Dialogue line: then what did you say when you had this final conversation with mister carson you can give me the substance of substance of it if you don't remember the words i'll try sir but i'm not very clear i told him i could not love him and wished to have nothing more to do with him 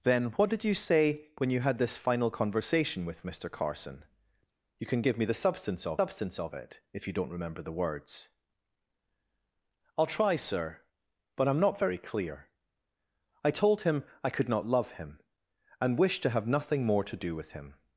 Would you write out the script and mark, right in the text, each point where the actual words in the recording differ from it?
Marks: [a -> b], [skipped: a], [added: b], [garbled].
then what did you say when you had this final conversation with mister carson you can give me the substance of substance of it if you don't remember the words i'll try sir but i'm not very clear i told him i could not love him and wished to have nothing more to do with him